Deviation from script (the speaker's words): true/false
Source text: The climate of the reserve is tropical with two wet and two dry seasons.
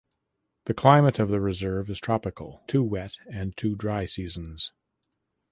true